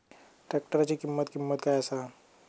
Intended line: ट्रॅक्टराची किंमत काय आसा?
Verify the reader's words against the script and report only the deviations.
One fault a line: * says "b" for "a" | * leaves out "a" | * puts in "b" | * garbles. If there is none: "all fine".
* puts in "किंमत"